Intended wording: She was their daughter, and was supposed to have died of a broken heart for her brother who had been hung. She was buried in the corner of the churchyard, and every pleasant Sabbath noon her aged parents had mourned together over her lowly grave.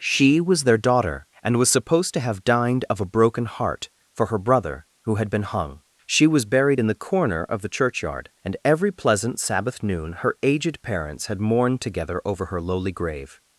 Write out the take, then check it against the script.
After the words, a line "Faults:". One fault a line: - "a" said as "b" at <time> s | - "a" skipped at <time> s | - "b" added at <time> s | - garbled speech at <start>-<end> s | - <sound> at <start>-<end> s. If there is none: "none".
She was their daughter, and was supposed to have dined of a broken heart for her brother who had been hung. She was buried in the corner of the churchyard, and every pleasant Sabbath noon her aged parents had mourned together over her lowly grave.
Faults:
- "died" said as "dined" at 2.4 s